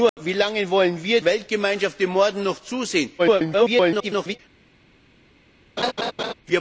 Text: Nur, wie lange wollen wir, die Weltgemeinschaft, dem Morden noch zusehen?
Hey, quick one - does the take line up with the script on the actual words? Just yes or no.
no